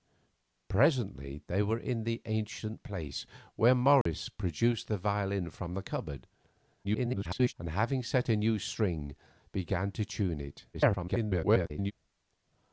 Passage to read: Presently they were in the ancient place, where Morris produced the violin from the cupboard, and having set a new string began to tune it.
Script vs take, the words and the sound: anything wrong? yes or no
yes